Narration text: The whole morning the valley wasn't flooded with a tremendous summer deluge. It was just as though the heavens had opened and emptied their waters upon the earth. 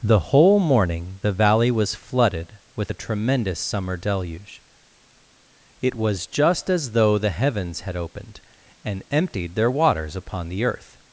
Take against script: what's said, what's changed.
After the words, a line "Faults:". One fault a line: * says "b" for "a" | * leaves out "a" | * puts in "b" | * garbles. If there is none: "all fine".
The whole morning the valley was flooded with a tremendous summer deluge. It was just as though the heavens had opened and emptied their waters upon the earth.
Faults:
* says "was" for "wasn't"